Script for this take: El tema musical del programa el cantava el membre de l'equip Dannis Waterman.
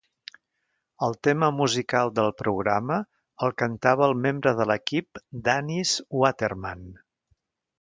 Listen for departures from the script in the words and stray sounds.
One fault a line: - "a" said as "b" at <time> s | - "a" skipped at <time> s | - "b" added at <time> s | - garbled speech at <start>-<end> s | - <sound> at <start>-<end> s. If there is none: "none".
none